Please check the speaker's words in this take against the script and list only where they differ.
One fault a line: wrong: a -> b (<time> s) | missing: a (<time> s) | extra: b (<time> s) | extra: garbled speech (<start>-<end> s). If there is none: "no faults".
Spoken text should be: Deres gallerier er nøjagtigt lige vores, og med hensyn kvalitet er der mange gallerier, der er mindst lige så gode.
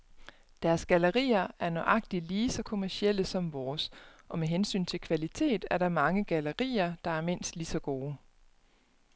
extra: så kommercielle som (2.5 s)
extra: til (4.8 s)